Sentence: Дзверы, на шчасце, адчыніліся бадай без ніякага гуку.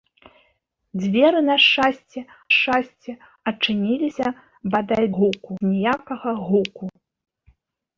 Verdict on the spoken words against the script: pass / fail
fail